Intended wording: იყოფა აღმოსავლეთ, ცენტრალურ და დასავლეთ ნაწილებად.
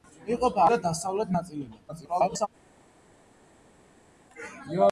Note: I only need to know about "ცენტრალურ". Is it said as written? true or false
false